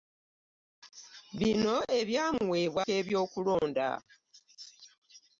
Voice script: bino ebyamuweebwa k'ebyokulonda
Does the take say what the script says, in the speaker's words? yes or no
yes